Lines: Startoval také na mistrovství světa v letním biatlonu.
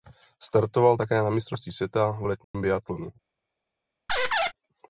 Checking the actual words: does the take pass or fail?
pass